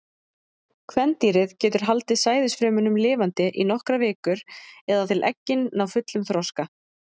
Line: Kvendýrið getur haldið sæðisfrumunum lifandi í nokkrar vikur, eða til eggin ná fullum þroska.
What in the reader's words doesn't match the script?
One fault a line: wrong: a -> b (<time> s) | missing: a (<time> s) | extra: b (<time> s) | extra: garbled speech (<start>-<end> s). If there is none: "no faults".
no faults